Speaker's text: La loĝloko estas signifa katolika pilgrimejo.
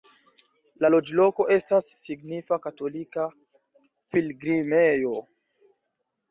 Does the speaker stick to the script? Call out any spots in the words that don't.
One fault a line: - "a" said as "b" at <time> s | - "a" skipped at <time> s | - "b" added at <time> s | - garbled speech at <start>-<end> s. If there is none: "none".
none